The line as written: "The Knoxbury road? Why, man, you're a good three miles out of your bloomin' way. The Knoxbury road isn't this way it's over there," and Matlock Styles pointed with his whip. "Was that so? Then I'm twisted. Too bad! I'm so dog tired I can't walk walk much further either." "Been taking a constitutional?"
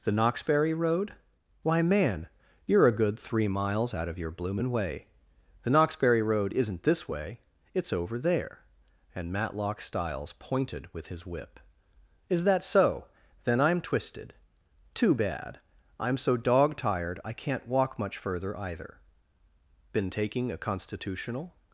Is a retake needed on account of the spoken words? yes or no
yes